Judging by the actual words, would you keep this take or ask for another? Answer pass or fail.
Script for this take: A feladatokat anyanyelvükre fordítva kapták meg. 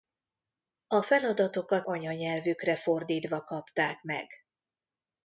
pass